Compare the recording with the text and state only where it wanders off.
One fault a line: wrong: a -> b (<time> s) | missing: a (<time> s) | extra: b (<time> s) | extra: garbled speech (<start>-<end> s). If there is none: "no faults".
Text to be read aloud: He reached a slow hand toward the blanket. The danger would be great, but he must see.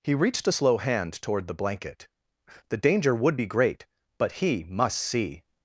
no faults